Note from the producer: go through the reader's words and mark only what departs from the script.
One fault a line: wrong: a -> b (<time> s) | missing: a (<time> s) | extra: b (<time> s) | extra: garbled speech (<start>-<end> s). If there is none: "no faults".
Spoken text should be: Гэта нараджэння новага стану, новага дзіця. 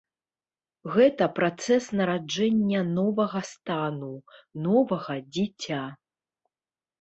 extra: працэс (1.4 s)